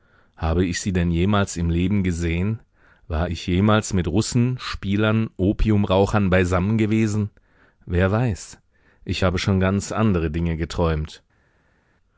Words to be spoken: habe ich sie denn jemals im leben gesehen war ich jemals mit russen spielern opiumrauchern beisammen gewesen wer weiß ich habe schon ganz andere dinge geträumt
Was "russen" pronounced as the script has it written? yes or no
yes